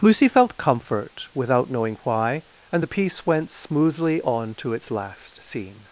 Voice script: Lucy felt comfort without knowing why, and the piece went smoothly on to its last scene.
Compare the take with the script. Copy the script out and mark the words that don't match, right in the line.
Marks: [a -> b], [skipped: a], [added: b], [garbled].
Lucy felt comfort without knowing why, and the piece went smoothly on to its last scene.